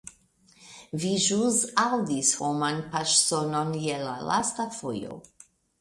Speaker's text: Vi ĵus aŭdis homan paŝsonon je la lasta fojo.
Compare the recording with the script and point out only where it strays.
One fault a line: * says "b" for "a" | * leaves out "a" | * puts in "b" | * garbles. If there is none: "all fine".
all fine